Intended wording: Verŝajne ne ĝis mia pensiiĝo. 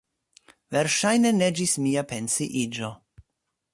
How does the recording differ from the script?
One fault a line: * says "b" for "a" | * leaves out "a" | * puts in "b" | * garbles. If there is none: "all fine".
all fine